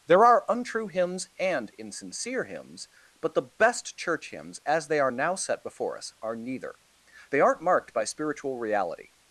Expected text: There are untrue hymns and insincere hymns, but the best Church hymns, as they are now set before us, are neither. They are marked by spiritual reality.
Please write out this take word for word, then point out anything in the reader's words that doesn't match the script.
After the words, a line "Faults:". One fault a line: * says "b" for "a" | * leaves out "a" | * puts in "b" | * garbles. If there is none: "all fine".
There are untrue hymns and insincere hymns, but the best Church hymns, as they are now set before us, are neither. They aren't marked by spiritual reality.
Faults:
* says "aren't" for "are"